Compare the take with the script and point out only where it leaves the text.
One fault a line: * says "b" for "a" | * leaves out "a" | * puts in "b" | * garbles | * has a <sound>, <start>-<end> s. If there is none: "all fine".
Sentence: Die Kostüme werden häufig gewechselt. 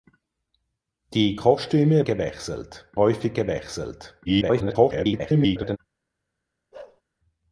* says "gewechselt" for "werden"
* garbles
* has a bark, 6.7-7.0 s